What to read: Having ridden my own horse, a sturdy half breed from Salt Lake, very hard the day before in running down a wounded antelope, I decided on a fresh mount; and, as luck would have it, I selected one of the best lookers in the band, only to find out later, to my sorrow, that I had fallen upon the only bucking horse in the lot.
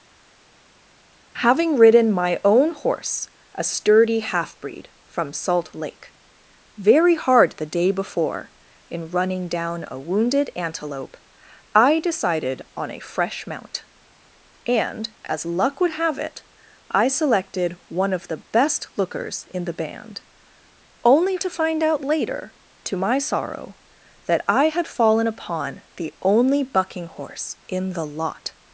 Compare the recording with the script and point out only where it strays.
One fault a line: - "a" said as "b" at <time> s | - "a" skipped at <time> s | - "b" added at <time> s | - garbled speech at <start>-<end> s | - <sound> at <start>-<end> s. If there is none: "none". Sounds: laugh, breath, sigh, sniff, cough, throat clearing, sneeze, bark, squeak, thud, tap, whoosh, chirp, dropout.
none